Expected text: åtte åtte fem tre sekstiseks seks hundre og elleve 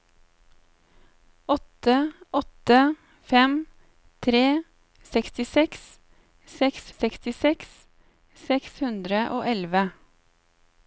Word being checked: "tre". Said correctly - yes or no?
yes